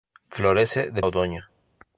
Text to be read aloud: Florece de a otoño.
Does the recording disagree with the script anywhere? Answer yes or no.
no